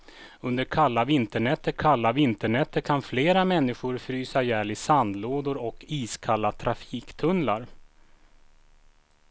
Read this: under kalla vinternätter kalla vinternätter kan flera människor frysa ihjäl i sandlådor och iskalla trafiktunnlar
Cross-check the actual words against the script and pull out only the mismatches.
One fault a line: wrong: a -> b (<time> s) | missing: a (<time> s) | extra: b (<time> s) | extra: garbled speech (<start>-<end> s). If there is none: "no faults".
no faults